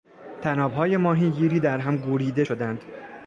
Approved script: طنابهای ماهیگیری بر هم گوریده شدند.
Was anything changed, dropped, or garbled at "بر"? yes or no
yes